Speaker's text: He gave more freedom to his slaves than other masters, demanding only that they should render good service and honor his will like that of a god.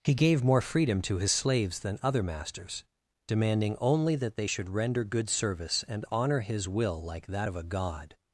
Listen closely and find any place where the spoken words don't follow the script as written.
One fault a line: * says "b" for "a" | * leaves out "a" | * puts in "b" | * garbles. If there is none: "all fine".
all fine